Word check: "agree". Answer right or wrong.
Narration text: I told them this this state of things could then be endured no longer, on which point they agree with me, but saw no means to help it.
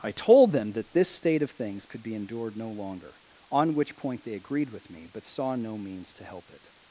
wrong